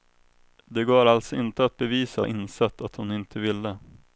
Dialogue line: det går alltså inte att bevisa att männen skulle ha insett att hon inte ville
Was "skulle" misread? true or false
true